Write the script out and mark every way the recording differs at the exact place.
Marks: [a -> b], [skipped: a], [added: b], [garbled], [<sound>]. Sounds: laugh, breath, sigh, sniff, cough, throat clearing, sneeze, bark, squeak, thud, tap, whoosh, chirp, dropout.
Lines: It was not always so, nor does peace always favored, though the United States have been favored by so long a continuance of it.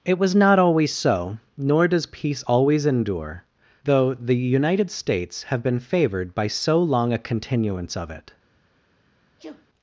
It was not always so, nor does peace always [favored, -> endure] though the United States have been favored by so long a continuance of it. [sneeze]